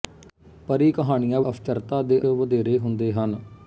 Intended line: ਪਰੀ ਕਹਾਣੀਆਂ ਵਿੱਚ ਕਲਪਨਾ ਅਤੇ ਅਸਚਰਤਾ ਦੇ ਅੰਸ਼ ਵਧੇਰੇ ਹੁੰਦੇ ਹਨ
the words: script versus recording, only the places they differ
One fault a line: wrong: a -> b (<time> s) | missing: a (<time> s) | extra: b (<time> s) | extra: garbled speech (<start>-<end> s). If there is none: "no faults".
missing: ਵਿੱਚ ਕਲਪਨਾ ਅਤੇ (1.4 s)
missing: ਅੰਸ਼ (2.2 s)